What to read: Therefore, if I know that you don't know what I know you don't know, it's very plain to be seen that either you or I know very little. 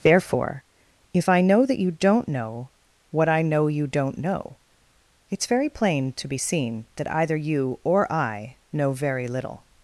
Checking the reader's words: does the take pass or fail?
pass